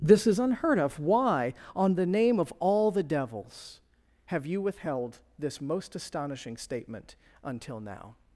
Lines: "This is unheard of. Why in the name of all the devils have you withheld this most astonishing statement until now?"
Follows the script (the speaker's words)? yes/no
no